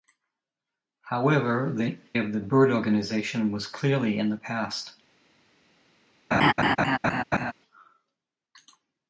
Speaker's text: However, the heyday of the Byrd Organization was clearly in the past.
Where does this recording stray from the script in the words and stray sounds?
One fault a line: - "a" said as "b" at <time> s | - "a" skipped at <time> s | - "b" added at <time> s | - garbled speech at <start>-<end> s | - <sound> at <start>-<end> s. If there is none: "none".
- "heyday" skipped at 2.0 s
- laugh at 6.3-7.5 s